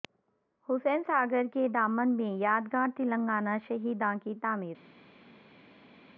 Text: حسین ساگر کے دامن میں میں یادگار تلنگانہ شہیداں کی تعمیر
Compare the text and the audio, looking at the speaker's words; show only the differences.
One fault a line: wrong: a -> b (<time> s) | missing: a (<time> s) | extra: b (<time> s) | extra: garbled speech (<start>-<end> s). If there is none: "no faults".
missing: میں (2.3 s)